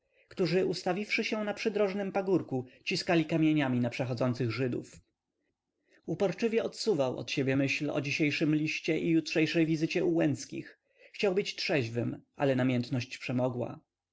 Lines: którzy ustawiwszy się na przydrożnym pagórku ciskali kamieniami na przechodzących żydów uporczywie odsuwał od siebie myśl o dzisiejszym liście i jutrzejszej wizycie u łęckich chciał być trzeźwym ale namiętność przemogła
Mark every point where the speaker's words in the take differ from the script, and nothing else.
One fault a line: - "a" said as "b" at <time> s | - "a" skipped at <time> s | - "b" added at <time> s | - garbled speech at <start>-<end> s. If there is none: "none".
none